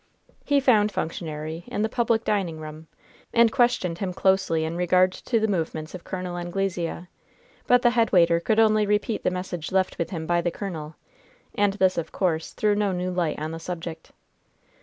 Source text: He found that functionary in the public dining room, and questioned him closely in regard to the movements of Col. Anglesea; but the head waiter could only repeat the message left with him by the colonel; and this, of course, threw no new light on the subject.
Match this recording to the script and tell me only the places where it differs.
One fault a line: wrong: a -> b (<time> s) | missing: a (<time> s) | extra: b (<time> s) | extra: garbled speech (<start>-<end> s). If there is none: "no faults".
missing: that (0.9 s)